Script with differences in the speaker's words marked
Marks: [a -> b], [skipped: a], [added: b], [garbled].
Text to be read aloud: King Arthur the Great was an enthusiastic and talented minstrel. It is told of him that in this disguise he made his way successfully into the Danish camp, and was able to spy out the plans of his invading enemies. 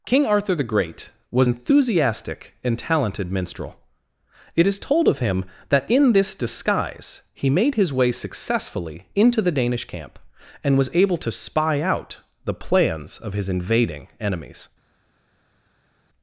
King Arthur the Great was [skipped: an] enthusiastic and talented minstrel. It is told of him that in this disguise he made his way successfully into the Danish camp, and was able to spy out the plans of his invading enemies.